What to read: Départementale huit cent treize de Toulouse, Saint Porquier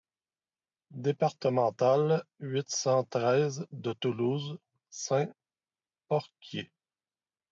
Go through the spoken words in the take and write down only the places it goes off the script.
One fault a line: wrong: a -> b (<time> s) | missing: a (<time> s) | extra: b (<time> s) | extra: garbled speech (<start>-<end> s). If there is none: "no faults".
no faults